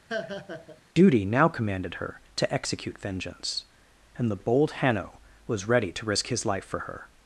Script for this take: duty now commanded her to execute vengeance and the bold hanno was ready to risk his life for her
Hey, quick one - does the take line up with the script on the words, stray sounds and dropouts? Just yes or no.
no